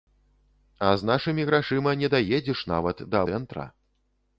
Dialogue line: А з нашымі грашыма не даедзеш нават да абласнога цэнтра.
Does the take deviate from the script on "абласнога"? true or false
true